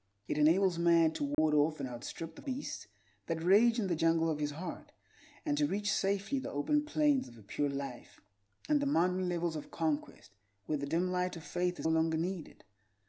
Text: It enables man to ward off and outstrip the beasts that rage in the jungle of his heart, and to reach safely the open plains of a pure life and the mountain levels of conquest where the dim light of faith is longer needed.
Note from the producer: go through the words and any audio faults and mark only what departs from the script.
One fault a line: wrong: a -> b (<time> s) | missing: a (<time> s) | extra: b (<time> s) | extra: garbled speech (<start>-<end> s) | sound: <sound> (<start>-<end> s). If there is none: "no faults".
sound: dropout (1.3-1.4 s)